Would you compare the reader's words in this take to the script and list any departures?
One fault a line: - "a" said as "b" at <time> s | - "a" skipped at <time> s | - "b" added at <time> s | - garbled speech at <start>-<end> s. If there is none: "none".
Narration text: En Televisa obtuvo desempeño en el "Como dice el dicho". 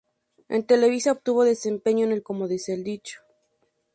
none